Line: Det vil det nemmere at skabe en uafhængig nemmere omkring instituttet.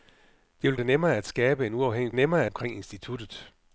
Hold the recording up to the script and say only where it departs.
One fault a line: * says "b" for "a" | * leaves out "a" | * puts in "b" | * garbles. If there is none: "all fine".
all fine